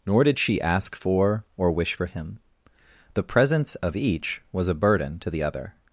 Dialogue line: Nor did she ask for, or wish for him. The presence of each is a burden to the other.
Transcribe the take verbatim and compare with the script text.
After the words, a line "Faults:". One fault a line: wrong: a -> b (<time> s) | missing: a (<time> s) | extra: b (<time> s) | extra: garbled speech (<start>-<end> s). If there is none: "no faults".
Nor did she ask for, or wish for him. The presence of each was a burden to the other.
Faults:
wrong: is -> was (4.5 s)